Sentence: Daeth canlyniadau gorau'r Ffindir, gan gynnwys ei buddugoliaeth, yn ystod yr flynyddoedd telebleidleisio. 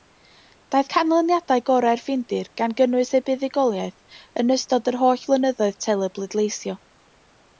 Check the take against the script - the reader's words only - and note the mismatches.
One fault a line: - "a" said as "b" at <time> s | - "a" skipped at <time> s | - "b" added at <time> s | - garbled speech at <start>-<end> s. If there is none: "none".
- "holl" added at 5.0 s